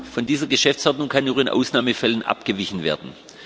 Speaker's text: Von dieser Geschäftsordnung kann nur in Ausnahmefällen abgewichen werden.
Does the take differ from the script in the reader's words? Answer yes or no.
no